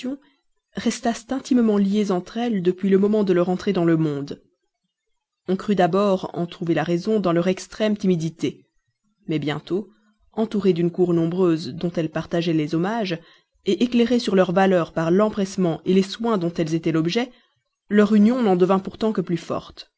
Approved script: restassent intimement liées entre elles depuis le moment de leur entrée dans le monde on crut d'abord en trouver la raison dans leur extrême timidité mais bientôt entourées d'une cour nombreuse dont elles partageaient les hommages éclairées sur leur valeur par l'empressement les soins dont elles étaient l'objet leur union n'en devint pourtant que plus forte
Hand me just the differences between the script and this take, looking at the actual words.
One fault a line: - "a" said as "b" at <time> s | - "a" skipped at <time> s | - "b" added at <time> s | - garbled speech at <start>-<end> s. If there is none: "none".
none